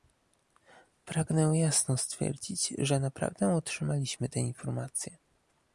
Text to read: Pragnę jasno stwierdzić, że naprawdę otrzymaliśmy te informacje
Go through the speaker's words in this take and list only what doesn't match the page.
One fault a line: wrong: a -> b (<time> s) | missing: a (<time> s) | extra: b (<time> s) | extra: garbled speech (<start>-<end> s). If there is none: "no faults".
no faults